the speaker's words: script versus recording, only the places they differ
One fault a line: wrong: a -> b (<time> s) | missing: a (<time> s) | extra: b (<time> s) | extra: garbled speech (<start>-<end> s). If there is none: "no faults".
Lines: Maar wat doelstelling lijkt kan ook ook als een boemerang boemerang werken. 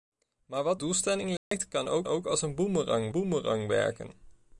no faults